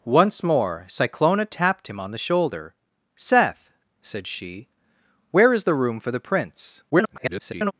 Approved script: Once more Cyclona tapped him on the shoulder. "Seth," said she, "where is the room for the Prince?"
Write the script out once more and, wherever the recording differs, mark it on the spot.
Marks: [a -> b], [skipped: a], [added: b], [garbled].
Once more Cyclona tapped him on the shoulder. "Seth," said she, "where is the room for the Prince?" [garbled]